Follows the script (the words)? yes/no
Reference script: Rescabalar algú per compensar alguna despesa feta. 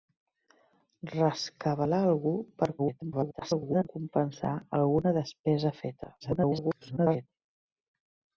no